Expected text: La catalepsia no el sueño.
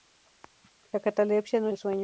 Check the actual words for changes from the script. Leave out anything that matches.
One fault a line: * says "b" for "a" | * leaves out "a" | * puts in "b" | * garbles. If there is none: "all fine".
all fine